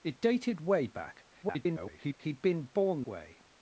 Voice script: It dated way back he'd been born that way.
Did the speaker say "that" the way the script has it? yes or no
no